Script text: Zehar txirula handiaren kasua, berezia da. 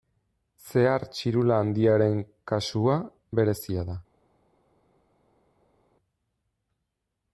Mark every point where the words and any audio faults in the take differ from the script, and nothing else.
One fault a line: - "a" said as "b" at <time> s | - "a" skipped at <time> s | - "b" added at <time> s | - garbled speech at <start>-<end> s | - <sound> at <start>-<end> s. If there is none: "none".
none